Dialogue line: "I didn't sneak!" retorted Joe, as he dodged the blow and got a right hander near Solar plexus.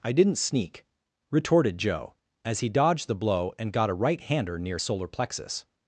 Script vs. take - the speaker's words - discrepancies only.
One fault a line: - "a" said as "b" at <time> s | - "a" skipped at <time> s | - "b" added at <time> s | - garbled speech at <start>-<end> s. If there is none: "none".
none